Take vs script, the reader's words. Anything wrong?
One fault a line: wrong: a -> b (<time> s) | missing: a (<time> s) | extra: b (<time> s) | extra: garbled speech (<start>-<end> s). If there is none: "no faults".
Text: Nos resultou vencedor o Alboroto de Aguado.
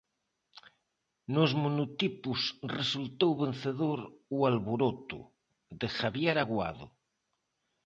extra: monotipos (1.6 s)
extra: Javier (6.0 s)